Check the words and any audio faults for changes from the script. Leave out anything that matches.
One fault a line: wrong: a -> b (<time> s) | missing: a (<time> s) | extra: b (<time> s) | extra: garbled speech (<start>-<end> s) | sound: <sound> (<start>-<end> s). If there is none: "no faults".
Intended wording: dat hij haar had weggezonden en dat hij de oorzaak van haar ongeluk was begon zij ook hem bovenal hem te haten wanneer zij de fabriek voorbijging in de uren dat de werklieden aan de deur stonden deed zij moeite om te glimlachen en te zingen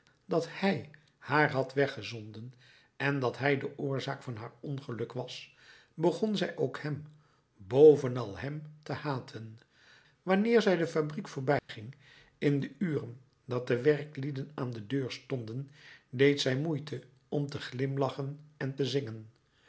sound: dropout (11.6-11.7 s)